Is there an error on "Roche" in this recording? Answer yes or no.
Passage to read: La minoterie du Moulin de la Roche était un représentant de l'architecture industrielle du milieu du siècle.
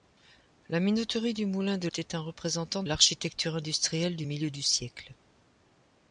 yes